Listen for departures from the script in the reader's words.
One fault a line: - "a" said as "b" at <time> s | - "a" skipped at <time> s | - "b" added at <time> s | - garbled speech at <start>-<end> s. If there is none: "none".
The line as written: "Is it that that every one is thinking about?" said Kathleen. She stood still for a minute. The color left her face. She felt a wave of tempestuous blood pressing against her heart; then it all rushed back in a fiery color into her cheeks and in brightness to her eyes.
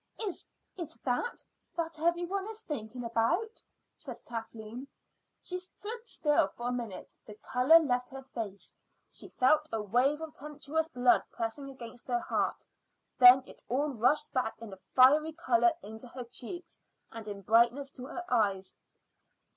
none